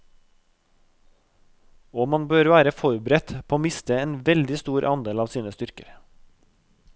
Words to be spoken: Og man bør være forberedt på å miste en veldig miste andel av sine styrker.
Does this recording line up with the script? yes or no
no